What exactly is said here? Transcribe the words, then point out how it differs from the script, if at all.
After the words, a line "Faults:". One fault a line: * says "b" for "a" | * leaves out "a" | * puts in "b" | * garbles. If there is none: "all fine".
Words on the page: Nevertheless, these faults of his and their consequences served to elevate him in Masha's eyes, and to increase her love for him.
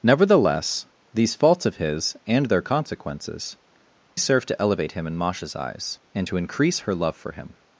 Nevertheless, these faults of his and their consequences served to elevate him in Masha's eyes, and to increase her love for him.
Faults:
all fine